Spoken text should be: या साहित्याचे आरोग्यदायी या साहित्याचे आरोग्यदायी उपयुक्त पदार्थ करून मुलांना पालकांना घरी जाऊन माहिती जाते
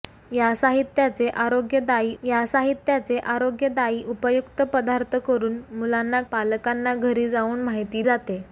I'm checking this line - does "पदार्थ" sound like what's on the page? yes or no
yes